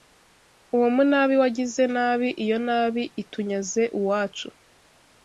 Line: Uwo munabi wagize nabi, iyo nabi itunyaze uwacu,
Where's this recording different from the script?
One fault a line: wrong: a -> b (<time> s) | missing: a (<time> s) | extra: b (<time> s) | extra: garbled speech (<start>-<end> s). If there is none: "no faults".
no faults